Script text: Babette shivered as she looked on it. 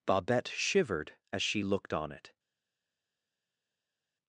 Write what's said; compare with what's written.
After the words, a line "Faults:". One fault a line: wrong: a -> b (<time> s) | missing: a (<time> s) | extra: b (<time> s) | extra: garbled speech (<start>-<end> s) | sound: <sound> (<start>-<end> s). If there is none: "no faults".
Babette shivered as she looked on it.
Faults:
no faults